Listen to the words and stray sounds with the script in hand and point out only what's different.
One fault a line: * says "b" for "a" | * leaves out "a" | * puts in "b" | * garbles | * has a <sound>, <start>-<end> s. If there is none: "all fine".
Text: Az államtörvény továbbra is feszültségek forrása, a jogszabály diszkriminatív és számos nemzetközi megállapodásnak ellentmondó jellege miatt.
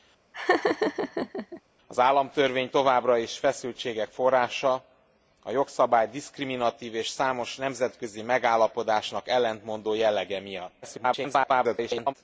* has a laugh, 0.3-1.6 s
* garbles